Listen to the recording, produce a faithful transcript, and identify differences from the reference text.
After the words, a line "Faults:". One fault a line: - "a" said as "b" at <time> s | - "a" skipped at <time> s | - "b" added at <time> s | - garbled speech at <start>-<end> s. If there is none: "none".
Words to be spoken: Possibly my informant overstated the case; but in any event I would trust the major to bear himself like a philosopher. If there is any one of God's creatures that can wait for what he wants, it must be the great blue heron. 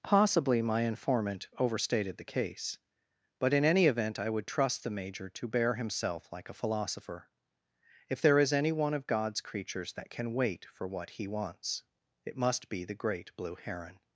Possibly my informant overstated the case; but in any event I would trust the major to bear himself like a philosopher. If there is any one of God's creatures that can wait for what he wants, it must be the great blue heron.
Faults:
none